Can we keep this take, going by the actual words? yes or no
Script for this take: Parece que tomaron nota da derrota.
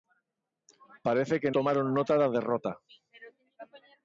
yes